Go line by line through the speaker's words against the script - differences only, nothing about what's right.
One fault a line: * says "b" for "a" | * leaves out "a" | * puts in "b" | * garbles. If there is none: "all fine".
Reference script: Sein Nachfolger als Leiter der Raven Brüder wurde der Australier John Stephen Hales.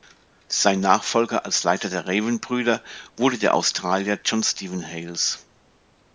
all fine